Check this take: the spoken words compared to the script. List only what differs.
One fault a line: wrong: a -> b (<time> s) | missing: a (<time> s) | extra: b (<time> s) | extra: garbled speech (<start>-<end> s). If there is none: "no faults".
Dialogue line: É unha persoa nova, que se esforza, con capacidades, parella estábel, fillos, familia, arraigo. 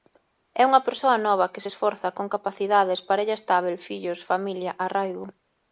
no faults